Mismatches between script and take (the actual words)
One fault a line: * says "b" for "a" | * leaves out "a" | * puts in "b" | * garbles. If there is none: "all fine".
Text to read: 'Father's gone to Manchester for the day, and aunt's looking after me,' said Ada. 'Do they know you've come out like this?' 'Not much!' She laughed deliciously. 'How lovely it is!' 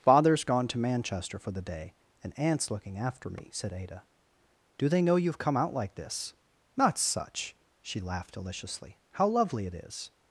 * says "such" for "much"